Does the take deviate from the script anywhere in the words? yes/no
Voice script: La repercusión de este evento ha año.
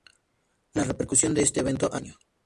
no